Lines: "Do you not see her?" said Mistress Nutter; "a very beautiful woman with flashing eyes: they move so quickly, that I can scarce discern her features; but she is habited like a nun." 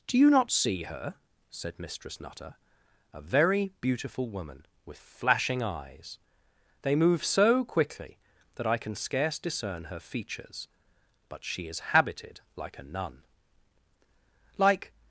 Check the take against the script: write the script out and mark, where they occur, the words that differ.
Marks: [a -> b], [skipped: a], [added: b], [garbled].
"Do you not see her?" said Mistress Nutter; "a very beautiful woman with flashing eyes: they move so quickly, that I can scarce discern her features; but she is habited like a nun." [added: Like]